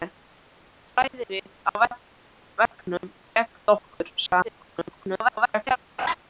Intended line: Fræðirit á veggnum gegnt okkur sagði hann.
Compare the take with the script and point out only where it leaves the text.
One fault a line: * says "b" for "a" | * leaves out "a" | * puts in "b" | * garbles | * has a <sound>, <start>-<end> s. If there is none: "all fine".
* garbles
* has a laugh, 6.0-6.1 s